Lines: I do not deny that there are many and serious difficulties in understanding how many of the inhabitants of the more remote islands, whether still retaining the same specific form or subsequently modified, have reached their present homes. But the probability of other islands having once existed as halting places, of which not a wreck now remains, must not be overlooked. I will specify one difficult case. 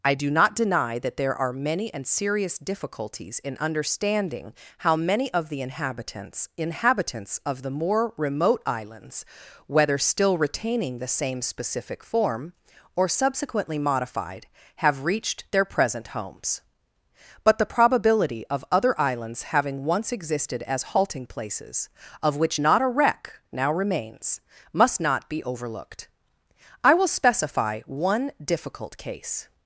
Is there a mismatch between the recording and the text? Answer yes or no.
yes